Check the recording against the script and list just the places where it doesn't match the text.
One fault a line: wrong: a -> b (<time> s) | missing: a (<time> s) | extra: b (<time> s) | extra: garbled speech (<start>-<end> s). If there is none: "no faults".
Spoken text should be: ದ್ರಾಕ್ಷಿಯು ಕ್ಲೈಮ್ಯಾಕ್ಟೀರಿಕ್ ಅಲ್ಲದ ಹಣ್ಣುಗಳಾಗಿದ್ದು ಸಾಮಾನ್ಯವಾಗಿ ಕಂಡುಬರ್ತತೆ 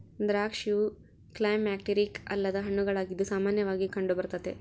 no faults